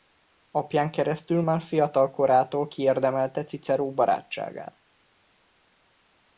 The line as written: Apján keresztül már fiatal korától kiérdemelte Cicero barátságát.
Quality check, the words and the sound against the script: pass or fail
pass